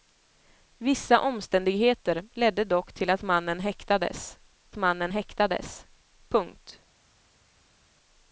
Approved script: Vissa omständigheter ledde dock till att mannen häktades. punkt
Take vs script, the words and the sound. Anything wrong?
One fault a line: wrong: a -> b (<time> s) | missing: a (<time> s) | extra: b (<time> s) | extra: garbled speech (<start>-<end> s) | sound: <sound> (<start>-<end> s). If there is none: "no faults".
extra: mannen häktades (4.7 s)